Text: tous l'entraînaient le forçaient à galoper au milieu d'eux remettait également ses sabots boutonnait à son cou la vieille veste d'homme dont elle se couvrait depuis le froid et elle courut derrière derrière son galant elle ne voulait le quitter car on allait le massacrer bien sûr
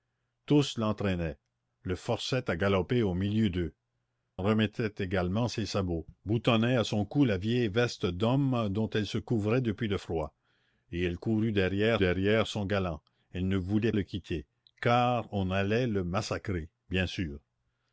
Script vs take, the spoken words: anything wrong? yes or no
no